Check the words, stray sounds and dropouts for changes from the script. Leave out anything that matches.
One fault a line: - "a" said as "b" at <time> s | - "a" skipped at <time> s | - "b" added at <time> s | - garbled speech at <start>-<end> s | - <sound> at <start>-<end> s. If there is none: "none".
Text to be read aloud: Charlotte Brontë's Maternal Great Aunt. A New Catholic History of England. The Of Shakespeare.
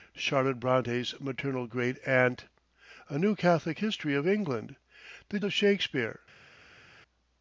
none